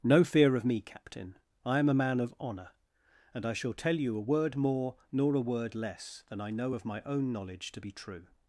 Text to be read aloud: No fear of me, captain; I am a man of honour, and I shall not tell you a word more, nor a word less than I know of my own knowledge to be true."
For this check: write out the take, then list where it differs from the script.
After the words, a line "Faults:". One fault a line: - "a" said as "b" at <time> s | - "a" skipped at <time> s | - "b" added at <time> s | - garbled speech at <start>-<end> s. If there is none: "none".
No fear of me, captain; I am a man of honour, and I shall tell you a word more, nor a word less than I know of my own knowledge to be true."
Faults:
- "not" skipped at 3.7 s